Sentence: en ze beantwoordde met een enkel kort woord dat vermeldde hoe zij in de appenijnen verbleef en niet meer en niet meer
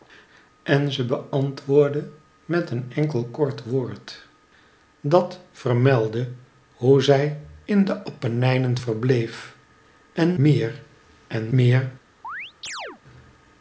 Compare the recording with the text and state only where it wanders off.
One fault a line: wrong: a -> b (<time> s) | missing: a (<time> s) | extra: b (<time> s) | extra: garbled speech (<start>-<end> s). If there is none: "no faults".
missing: niet (10.4 s)
missing: niet (11.5 s)